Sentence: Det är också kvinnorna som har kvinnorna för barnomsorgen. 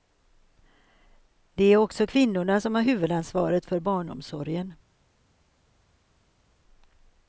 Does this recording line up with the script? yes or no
no